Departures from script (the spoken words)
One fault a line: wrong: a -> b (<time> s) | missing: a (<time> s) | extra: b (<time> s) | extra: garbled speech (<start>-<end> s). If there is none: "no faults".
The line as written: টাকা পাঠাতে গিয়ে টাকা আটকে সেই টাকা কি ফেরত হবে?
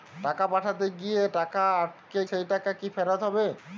no faults